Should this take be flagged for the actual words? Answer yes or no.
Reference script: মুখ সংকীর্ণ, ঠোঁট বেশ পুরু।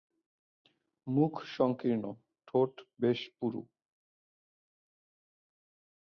no